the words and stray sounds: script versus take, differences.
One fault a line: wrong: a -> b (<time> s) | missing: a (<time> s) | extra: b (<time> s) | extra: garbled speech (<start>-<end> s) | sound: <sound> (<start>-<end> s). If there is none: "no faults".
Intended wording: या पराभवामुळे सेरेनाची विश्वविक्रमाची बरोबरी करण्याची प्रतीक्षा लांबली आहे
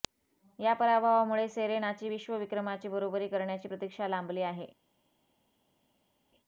no faults